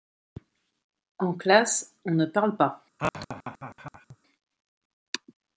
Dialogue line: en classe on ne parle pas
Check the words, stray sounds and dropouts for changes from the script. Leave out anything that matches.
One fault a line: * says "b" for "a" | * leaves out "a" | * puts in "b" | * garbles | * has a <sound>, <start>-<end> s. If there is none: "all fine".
* has a laugh, 3.0-4.2 s